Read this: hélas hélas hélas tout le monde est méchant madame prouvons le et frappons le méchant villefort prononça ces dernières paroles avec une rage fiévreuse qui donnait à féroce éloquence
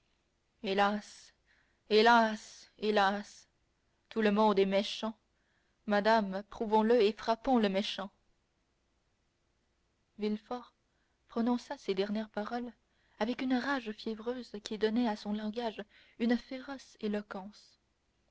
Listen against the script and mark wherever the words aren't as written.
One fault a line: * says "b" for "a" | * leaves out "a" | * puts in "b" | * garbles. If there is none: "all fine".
* puts in "son langage une"